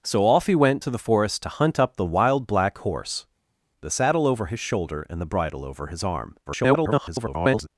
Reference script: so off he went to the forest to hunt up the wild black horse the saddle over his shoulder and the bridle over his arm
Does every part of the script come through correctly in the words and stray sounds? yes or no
no